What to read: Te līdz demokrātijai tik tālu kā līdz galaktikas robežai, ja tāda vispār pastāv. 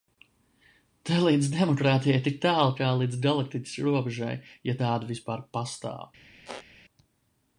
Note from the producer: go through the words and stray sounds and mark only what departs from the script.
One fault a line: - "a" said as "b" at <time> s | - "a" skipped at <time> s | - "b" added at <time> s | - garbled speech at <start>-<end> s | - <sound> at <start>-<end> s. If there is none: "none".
- squeak at 6.4-6.7 s